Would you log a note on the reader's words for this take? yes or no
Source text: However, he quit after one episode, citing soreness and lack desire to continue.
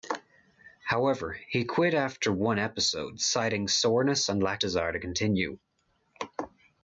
no